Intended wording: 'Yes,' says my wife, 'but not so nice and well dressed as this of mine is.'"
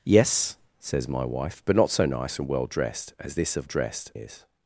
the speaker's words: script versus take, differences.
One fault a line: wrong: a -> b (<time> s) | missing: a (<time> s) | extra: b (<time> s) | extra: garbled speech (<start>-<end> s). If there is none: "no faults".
wrong: mine -> dressed (3.6 s)